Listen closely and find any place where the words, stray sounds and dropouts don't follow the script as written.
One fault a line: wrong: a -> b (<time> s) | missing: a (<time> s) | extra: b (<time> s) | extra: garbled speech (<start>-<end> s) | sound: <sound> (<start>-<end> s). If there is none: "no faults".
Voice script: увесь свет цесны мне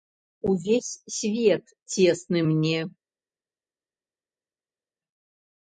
no faults